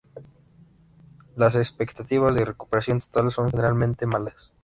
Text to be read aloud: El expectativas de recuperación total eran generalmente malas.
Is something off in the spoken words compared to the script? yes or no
yes